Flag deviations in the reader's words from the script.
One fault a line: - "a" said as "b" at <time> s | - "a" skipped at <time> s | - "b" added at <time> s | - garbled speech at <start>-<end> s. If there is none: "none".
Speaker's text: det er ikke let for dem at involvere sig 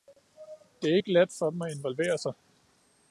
none